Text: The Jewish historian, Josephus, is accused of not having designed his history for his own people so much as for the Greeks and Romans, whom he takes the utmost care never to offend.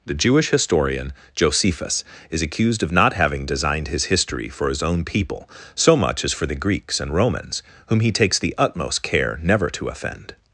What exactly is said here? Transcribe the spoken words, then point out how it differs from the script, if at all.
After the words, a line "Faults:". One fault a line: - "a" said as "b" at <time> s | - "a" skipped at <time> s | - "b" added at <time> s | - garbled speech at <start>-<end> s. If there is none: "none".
The Jewish historian, Josephus, is accused of not having designed his history for his own people so much as for the Greeks and Romans, whom he takes the utmost care never to offend.
Faults:
none